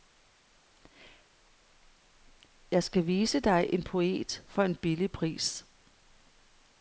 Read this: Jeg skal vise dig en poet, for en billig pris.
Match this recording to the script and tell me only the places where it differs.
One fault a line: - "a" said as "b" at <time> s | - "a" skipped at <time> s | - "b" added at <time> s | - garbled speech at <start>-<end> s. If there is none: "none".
none